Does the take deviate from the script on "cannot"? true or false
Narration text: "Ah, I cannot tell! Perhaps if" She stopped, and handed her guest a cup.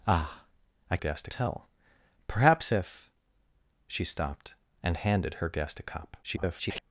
true